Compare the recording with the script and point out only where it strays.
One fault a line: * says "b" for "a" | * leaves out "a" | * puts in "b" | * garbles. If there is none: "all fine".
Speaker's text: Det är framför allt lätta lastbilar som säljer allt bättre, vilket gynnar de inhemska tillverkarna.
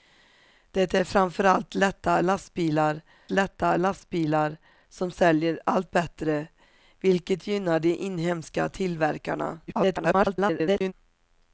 * puts in "lätta lastbilar"
* garbles